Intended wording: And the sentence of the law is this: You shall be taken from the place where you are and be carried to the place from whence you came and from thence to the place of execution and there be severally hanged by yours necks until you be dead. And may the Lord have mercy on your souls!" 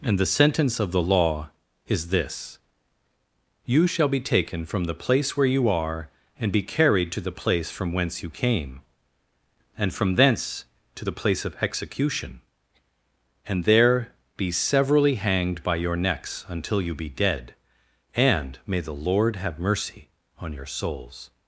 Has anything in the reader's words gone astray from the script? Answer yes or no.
yes